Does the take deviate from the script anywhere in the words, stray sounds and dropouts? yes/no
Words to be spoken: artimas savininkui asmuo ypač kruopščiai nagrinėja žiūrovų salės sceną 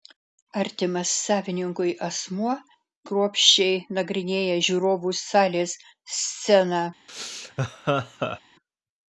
yes